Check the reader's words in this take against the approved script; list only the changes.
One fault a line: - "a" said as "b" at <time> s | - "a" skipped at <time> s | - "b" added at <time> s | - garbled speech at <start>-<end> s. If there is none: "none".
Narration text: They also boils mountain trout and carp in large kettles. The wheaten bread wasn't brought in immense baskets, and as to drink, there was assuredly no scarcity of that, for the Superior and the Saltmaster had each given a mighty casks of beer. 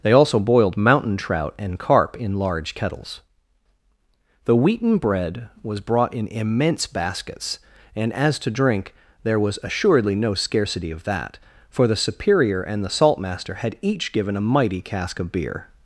- "boils" said as "boiled" at 0.4 s
- "wasn't" said as "was" at 5.6 s
- "casks" said as "cask" at 14.8 s